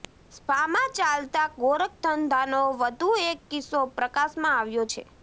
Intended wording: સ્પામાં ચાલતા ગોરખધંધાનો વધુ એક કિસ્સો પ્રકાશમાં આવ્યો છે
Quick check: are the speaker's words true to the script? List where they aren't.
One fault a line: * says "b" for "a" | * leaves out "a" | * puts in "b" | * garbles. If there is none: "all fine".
all fine